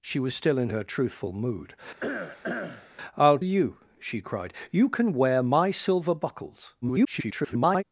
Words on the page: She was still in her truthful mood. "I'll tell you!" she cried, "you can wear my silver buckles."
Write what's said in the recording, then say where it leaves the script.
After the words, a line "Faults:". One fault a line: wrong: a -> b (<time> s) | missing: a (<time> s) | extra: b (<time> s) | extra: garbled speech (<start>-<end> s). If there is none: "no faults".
She was still in her truthful mood. "I'll you!" she cried, "you can wear my silver buckles." [garbled]
Faults:
missing: tell (3.4 s)
extra: garbled speech (6.8-7.8 s)